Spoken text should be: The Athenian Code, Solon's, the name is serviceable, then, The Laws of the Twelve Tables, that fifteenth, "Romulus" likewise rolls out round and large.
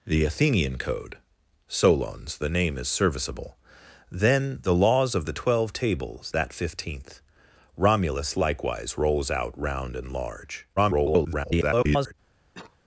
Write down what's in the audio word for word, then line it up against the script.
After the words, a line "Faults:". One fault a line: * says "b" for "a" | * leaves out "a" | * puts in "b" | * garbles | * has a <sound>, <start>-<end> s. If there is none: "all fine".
The Athenian Code, Solon's, the name is serviceable, then, The Laws of the Twelve Tables, that fifteenth, "Romulus" likewise rolls out round and large. [garbled]
Faults:
* garbles
* has a cough, 12.5-12.8 s